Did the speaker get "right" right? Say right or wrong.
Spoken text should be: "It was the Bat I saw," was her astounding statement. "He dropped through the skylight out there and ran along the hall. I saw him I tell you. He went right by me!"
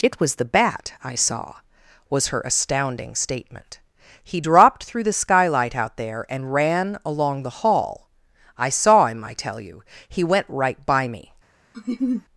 right